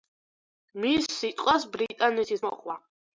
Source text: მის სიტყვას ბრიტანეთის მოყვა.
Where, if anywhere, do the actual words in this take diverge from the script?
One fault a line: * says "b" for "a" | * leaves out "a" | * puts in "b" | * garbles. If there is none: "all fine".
all fine